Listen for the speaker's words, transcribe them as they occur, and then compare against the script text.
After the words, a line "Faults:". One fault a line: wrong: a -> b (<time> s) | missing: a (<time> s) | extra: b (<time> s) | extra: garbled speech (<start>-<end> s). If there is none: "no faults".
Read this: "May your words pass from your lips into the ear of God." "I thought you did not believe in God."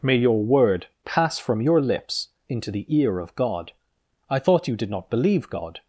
"May your word pass from your lips into the ear of God." "I thought you did not believe God."
Faults:
wrong: words -> word (0.4 s)
missing: in (5.5 s)